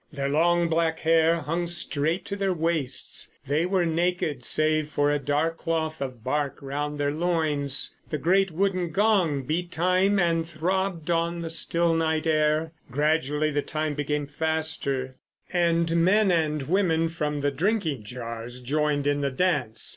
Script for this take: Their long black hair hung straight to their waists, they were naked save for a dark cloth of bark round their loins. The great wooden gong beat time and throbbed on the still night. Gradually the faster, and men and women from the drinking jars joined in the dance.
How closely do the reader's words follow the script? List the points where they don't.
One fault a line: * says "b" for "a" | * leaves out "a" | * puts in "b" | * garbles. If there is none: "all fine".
* puts in "air"
* puts in "time became"